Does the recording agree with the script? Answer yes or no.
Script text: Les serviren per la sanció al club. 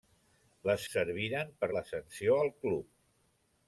yes